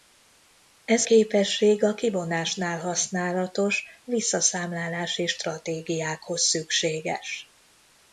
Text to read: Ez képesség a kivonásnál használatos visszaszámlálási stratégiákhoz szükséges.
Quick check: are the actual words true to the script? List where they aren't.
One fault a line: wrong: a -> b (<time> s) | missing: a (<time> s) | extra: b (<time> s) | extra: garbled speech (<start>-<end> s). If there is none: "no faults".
no faults